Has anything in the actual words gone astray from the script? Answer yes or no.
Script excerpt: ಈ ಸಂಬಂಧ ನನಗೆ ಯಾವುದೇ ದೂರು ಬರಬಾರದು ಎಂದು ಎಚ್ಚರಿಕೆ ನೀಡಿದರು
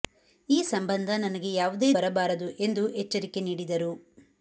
yes